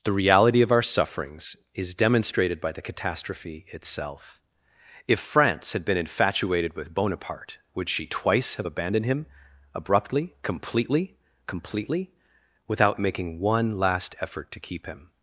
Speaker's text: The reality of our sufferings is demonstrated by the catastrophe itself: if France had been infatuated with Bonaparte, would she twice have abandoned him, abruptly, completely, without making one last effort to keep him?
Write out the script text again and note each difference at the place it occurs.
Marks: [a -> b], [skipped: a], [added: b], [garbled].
The reality of our sufferings is demonstrated by the catastrophe itself: if France had been infatuated with Bonaparte, would she twice have abandoned him, abruptly, completely, [added: completely] without making one last effort to keep him?